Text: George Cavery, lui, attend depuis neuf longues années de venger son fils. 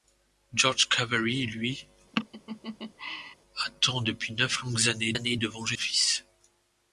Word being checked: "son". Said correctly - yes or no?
no